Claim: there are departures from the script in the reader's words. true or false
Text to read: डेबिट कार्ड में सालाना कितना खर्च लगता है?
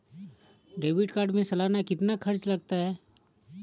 false